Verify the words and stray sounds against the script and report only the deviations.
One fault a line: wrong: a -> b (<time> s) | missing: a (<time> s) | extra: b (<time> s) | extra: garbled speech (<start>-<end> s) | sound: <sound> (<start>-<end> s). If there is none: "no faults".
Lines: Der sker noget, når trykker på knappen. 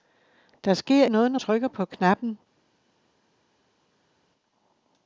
no faults